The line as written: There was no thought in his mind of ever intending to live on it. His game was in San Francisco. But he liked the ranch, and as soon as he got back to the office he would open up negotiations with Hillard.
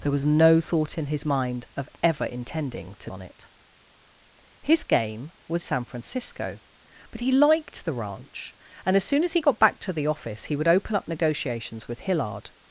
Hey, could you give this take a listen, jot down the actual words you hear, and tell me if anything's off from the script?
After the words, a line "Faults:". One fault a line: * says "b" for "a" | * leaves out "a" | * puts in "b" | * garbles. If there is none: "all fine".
There was no thought in his mind of ever intending to on it. His game was San Francisco. But he liked the ranch, and as soon as he got back to the office he would open up negotiations with Hillard.
Faults:
* leaves out "live"
* leaves out "in"